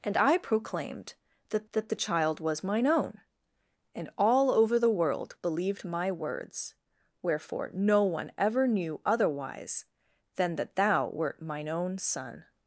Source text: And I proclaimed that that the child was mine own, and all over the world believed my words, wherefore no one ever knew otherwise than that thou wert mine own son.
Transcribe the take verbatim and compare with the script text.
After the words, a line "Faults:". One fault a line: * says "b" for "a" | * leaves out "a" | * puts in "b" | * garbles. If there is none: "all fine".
And I proclaimed that that the child was mine own, and all over the world believed my words, wherefore no one ever knew otherwise than that thou wert mine own son.
Faults:
all fine